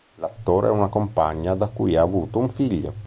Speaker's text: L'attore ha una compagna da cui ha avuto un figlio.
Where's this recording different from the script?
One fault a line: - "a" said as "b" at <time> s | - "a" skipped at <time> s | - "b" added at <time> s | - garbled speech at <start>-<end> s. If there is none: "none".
none